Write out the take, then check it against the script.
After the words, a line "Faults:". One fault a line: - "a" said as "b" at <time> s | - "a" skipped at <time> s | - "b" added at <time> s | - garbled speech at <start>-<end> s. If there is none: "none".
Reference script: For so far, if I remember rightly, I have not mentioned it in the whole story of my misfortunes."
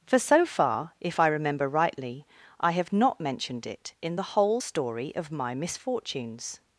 For so far, if I remember rightly, I have not mentioned it in the whole story of my misfortunes."
Faults:
none